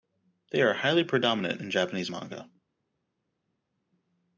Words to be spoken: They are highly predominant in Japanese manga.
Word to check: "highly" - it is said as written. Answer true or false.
true